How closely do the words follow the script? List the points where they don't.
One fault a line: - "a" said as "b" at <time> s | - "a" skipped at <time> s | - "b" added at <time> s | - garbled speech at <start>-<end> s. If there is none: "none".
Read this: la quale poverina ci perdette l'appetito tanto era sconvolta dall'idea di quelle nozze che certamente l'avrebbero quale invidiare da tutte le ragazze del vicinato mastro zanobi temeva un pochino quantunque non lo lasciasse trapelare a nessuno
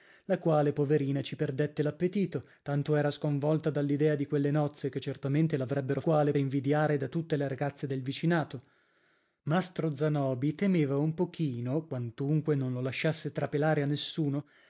none